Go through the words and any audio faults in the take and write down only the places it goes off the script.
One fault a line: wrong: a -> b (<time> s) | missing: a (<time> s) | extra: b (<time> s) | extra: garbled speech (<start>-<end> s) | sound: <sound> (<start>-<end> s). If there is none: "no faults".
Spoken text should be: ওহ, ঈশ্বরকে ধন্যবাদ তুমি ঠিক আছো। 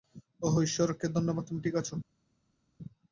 no faults